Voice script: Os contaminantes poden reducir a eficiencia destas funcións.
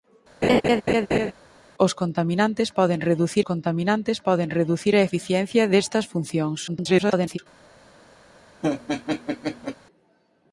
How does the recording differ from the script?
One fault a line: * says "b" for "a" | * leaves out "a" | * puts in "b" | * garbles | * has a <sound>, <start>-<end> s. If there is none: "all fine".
* has a laugh, 0.4-1.3 s
* puts in "contaminantes poden reducir"
* garbles
* has a laugh, 8.6-9.8 s